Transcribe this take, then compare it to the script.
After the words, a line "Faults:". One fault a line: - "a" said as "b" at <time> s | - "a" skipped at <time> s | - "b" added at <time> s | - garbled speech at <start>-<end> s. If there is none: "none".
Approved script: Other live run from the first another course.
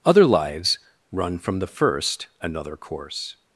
Other lives run from the first another course.
Faults:
- "live" said as "lives" at 0.2 s